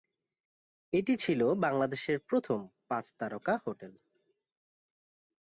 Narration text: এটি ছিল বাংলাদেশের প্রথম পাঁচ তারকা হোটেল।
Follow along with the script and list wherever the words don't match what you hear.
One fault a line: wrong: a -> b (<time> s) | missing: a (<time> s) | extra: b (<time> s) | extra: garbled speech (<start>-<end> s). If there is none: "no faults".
no faults